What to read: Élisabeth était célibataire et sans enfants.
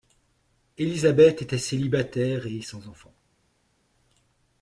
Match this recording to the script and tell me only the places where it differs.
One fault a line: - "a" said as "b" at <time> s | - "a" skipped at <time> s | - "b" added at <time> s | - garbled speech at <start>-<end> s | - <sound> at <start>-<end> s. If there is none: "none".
none